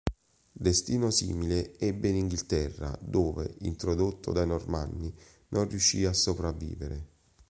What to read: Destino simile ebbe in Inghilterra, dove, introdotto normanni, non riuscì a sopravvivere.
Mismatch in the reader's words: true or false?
true